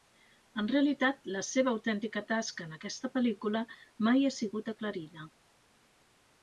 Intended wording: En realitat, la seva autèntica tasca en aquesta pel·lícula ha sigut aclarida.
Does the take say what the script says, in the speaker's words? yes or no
no